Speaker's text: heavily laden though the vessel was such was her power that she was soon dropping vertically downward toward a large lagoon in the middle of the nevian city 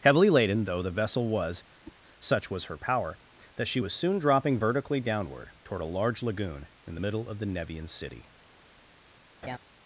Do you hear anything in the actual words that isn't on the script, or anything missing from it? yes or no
no